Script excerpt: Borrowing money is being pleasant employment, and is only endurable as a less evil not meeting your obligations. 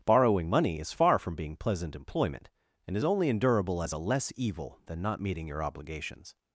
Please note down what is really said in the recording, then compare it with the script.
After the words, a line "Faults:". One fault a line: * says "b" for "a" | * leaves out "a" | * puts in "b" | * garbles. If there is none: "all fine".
Borrowing money is far from being pleasant employment, and is only endurable as a less evil than not meeting your obligations.
Faults:
* puts in "far from"
* puts in "than"